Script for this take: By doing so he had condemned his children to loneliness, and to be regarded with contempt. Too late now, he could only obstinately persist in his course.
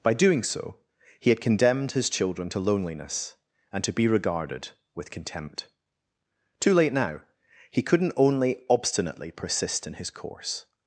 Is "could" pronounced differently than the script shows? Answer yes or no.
yes